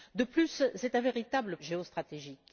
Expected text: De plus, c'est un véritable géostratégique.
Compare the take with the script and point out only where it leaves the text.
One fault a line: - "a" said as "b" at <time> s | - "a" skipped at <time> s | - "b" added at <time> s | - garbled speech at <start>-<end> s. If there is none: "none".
none